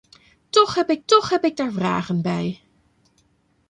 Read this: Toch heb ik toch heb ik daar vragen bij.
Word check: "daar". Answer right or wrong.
right